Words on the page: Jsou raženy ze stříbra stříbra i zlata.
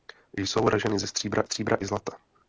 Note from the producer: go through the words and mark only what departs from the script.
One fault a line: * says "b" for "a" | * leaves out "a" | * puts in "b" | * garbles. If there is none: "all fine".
all fine